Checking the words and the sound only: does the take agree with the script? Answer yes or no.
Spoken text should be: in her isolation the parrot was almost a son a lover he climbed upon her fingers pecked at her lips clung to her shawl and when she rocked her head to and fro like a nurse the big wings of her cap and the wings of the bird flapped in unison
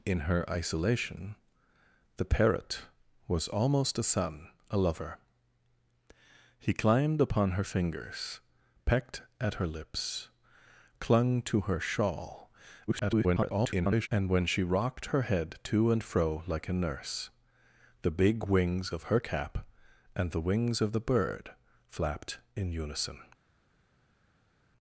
no